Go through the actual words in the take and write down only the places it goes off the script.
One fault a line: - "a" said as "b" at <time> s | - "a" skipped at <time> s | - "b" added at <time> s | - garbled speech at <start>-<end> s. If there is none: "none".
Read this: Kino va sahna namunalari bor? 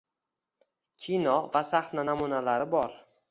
none